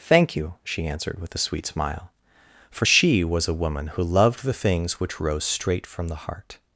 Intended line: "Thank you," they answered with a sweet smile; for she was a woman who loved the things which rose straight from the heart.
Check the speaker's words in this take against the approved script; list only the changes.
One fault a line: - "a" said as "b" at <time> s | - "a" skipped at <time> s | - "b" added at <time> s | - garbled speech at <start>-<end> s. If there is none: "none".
- "they" said as "she" at 0.6 s